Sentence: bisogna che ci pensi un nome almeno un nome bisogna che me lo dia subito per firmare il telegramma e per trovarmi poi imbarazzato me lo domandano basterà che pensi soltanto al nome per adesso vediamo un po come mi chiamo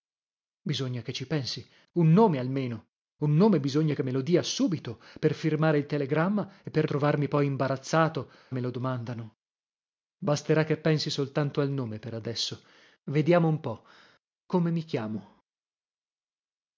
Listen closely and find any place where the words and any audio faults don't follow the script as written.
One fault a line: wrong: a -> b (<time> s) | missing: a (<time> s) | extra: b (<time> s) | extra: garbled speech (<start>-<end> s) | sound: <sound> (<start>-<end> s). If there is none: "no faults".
no faults